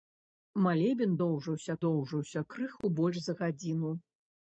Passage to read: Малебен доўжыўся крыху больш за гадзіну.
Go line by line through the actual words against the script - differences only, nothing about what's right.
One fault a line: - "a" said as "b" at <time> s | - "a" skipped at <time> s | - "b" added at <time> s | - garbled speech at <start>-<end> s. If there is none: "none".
- "доўжыўся" added at 1.8 s